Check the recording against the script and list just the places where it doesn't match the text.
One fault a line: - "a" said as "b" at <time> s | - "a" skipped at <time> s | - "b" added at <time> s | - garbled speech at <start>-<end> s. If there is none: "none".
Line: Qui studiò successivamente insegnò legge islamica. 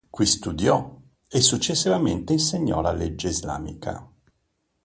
- "e" added at 1.3 s
- "la" added at 2.8 s